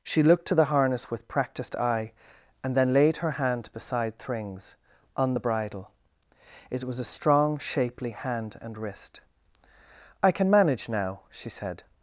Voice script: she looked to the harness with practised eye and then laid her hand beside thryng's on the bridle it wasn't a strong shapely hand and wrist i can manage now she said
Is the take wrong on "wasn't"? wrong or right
wrong